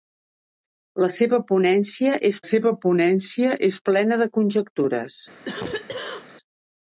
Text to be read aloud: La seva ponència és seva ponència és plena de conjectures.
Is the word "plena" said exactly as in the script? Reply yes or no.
yes